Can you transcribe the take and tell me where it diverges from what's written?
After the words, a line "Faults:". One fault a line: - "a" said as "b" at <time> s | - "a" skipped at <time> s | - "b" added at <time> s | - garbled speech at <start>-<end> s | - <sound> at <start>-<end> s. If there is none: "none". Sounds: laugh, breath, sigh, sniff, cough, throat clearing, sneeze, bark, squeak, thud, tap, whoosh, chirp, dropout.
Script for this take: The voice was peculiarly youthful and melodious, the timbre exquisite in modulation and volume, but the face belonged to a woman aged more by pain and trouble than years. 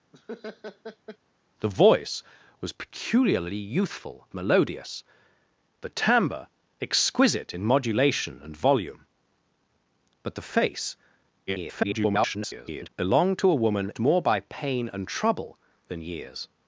The voice was peculiarly youthful melodious, the timbre exquisite in modulation and volume, but the face [garbled] belonged to a woman more by pain and trouble than years.
Faults:
- laugh at 0.1-1.2 s
- "and" skipped at 4.3 s
- garbled speech at 11.5-12.9 s
- "aged" skipped at 13.9 s